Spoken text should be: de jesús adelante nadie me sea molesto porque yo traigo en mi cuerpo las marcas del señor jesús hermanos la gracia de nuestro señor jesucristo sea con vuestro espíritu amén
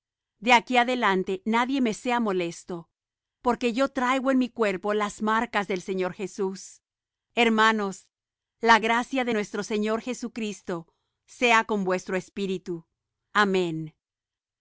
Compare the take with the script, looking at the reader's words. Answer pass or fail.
fail